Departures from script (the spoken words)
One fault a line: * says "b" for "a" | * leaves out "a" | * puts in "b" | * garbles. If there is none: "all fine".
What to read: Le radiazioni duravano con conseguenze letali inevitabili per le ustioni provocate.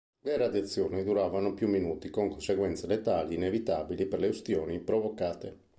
* puts in "più minuti"